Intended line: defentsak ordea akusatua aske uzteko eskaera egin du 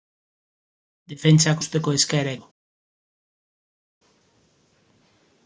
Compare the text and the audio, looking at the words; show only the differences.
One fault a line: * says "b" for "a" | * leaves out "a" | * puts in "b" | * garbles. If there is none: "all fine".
* leaves out "ordea akusatua aske"
* leaves out "egin"